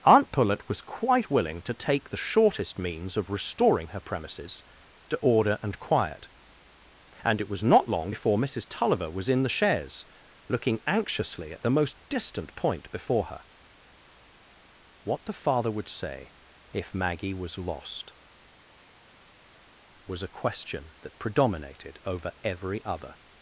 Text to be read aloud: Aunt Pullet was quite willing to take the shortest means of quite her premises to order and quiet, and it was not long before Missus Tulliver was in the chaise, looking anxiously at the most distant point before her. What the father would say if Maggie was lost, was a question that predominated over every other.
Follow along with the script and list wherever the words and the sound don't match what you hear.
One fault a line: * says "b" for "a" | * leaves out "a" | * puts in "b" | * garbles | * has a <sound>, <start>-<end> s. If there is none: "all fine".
* says "restoring" for "quite"